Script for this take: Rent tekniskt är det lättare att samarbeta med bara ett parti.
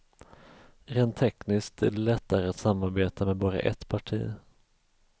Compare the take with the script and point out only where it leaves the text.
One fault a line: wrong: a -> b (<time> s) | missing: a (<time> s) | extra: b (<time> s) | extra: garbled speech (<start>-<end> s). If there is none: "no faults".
no faults